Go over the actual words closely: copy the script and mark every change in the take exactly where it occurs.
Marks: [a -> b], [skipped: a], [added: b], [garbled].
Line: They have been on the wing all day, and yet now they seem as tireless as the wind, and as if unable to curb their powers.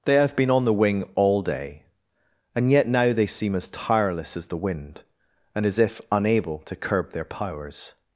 They have been on the wing all day, and yet now they seem as tireless as the wind, and as if unable to curb their powers.